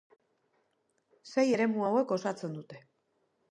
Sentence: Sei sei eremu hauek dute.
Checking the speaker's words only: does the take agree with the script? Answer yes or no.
no